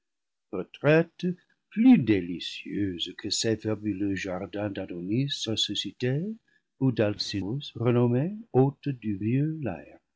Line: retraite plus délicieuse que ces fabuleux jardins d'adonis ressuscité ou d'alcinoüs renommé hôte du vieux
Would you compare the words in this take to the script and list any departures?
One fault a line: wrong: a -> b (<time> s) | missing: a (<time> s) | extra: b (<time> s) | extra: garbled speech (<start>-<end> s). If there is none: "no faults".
no faults